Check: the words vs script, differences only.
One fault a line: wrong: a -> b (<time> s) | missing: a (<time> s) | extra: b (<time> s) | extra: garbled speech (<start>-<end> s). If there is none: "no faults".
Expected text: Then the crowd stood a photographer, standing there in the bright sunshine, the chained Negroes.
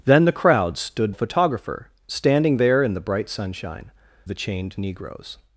no faults